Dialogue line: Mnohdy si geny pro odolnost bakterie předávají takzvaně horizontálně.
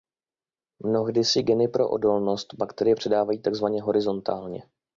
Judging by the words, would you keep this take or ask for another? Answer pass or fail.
pass